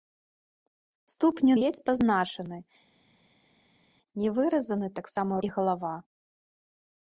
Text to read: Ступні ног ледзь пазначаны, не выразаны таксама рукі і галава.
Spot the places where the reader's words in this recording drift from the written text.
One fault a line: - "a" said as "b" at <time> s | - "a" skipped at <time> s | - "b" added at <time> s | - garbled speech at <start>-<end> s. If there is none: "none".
- "ног" skipped at 1.5 s
- "рукі" skipped at 5.3 s